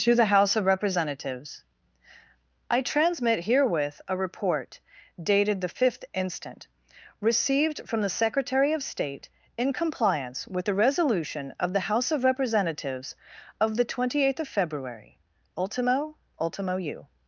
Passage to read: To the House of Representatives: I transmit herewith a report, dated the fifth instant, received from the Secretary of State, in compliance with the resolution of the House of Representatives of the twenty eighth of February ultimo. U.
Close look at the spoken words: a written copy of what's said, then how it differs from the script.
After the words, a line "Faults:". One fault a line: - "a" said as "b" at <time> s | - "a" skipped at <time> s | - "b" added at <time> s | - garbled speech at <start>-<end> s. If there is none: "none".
To the House of Representatives: I transmit herewith a report, dated the fifth instant, received from the Secretary of State, in compliance with the resolution of the House of Representatives of the twenty eighth of February ultimo ultimo. U.
Faults:
- "ultimo" added at 16.4 s